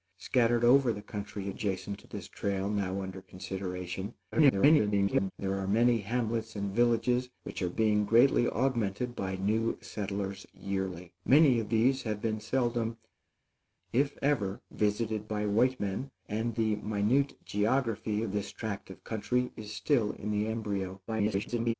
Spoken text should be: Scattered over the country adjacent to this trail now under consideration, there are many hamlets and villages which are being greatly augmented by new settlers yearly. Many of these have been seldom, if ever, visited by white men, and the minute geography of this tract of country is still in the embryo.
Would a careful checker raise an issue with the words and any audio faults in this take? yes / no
yes